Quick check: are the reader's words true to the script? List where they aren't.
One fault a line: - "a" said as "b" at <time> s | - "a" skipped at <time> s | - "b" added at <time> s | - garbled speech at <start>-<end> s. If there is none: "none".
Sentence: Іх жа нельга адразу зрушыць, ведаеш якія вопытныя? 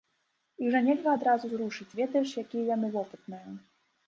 - "яны" added at 2.8 s